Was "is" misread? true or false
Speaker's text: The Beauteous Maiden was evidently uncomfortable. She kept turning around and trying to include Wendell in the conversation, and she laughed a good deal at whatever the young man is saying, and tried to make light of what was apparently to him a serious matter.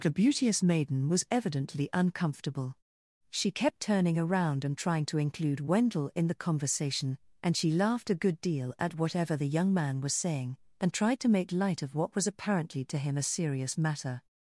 true